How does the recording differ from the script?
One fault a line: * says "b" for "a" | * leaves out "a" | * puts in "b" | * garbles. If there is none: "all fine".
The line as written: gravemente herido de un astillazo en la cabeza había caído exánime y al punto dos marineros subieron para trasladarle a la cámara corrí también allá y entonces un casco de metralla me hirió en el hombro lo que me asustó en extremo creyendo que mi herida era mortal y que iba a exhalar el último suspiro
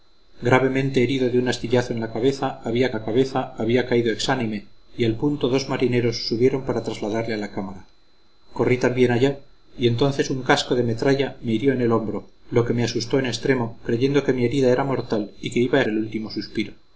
* puts in "la cabeza había"
* leaves out "exhalar"